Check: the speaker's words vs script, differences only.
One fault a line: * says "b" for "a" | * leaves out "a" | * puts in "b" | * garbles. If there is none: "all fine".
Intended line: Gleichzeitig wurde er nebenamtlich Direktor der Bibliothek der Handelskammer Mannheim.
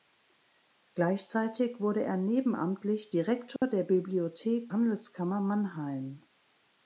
* leaves out "der"